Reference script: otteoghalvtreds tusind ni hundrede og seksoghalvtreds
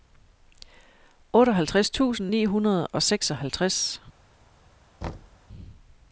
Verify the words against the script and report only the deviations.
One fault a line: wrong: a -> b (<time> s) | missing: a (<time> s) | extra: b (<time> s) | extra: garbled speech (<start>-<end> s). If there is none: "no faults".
no faults